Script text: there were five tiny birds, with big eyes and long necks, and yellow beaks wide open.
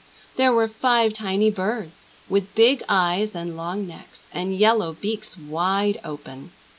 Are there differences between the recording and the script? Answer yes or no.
no